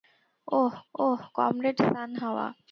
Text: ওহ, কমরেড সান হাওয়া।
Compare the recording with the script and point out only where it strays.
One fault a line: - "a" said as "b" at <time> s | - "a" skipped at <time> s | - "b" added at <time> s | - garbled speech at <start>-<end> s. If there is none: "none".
- "ওহ" added at 0.9 s